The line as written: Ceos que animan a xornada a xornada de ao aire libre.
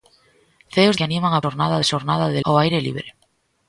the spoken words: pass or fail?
pass